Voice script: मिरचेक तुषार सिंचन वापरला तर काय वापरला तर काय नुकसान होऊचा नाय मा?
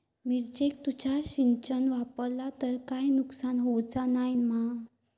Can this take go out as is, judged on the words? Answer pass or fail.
fail